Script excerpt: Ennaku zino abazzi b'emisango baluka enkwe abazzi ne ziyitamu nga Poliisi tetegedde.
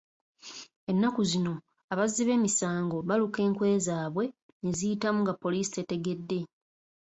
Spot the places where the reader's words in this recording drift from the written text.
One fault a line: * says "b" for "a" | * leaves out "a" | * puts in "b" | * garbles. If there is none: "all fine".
* says "zaabwe" for "abazzi"